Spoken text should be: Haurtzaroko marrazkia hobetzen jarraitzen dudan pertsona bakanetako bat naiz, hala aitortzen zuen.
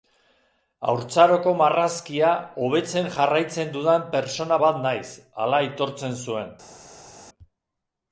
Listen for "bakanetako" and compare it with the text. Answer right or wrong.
wrong